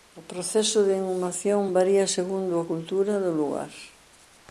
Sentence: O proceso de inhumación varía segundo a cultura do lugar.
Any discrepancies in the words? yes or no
no